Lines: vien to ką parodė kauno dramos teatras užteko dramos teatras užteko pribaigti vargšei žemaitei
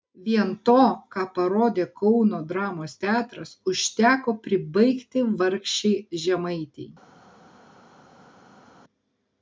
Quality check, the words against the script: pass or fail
fail